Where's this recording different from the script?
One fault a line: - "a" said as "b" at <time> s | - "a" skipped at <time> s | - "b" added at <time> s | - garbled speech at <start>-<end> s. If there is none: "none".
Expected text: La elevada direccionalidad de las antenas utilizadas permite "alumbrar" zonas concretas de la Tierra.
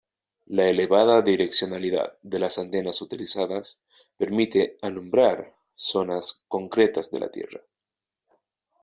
none